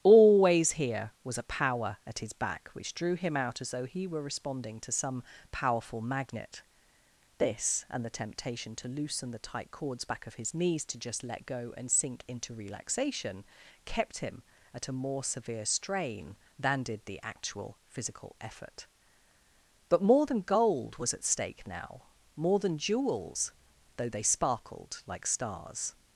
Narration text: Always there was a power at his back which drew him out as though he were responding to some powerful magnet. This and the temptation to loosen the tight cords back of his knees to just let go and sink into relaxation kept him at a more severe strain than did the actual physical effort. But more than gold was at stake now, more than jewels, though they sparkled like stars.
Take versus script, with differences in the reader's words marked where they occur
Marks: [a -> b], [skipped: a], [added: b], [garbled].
Always [there -> here] was a power at his back which drew him out as though he were responding to some powerful magnet. This and the temptation to loosen the tight cords back of his knees to just let go and sink into relaxation kept him at a more severe strain than did the actual physical effort. But more than gold was at stake now, more than jewels, though they sparkled like stars.